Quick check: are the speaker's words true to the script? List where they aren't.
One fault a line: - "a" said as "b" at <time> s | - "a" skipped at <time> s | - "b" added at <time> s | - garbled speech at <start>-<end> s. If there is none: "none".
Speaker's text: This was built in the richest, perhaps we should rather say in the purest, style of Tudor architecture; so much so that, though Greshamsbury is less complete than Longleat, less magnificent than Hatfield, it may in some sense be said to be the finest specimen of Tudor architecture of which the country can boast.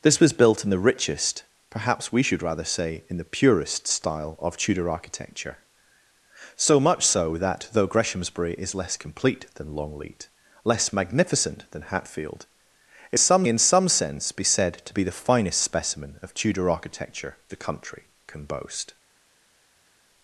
- "may" said as "some" at 13.2 s
- "of which" skipped at 17.4 s